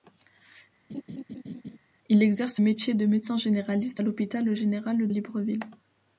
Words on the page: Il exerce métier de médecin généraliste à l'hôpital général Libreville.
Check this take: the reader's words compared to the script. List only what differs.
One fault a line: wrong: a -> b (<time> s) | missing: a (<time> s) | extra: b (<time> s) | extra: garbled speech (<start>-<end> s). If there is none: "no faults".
no faults